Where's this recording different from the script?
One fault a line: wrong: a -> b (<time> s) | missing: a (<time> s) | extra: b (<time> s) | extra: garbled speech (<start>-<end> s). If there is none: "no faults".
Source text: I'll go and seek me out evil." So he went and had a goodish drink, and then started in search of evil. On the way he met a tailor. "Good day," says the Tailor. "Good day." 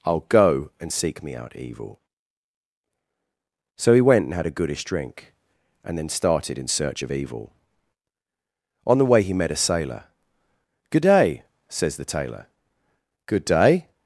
wrong: tailor -> sailor (9.6 s)